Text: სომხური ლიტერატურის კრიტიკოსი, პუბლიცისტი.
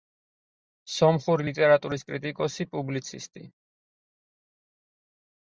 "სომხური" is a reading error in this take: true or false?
false